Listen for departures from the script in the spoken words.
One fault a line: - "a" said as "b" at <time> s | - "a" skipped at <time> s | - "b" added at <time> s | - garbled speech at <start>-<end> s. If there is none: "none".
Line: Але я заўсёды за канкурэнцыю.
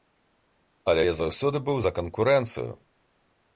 - "быў" added at 1.7 s